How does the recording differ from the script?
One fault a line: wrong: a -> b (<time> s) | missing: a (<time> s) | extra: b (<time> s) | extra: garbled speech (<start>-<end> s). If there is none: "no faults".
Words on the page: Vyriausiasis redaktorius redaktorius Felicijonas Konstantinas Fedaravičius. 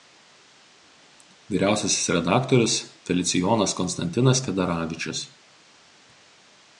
missing: redaktorius (2.8 s)